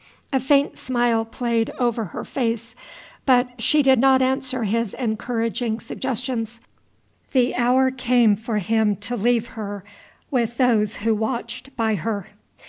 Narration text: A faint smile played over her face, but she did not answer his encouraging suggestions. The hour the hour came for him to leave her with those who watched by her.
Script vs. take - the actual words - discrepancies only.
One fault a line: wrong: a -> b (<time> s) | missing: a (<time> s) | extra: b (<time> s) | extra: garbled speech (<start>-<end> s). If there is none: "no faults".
missing: the hour (7.9 s)